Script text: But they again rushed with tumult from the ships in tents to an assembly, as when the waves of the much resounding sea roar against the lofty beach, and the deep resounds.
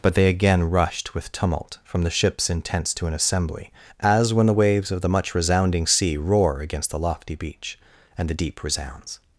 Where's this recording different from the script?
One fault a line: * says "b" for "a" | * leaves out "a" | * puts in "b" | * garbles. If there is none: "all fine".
all fine